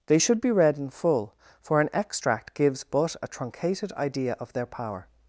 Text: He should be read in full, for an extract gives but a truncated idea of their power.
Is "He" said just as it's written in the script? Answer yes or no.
no